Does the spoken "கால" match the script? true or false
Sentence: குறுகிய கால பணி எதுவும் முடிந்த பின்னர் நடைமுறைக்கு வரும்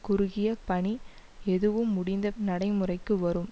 false